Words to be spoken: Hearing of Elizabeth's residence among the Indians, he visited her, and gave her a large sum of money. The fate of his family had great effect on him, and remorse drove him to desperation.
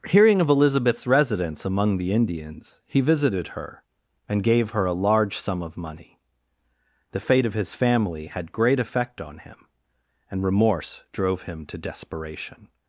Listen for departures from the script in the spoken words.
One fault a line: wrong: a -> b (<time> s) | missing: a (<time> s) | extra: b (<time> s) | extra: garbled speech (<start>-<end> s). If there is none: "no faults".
no faults